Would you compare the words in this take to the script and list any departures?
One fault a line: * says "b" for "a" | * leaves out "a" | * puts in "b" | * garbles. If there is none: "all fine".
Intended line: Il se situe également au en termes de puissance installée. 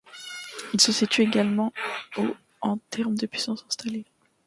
all fine